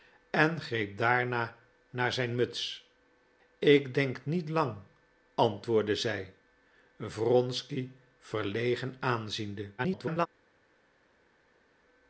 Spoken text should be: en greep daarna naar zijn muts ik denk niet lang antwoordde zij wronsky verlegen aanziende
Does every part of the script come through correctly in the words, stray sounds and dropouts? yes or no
no